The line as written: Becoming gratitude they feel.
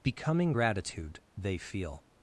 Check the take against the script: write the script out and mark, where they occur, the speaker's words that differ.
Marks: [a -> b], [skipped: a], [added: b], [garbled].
Becoming gratitude they feel.